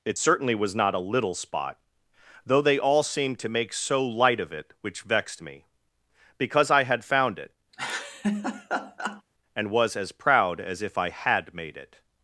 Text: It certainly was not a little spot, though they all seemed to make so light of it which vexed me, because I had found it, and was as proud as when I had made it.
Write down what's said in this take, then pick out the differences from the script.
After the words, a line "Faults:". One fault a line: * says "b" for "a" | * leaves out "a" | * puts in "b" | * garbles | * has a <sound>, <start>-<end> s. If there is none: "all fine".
It certainly was not a little spot, though they all seemed to make so light of it which vexed me, because I had found it, and was as proud as if I had made it.
Faults:
* has a laugh, 7.7-9.2 s
* says "if" for "when"